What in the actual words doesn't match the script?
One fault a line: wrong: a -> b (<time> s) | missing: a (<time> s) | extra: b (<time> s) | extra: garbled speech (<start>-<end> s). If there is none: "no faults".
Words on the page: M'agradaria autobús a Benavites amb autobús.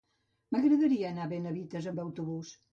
wrong: autobús -> anar (1.1 s)